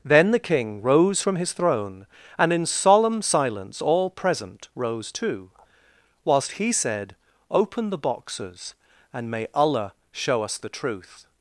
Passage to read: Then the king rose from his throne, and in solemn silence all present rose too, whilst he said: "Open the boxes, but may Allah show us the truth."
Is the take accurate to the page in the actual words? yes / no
no